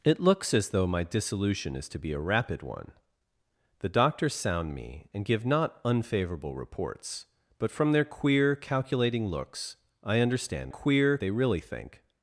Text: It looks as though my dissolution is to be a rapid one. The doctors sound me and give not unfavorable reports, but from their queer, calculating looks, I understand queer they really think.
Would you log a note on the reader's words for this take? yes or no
no